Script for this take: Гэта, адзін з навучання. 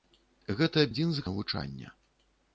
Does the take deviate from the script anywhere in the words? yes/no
no